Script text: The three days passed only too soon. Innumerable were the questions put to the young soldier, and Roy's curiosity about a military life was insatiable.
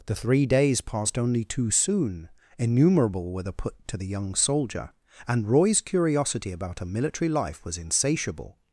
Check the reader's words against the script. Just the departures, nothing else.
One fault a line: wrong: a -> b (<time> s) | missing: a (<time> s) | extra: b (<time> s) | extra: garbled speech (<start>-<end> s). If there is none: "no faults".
missing: questions (3.5 s)